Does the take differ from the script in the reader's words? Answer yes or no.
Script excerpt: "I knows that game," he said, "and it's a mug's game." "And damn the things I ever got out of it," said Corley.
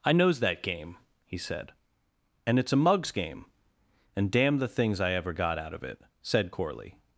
no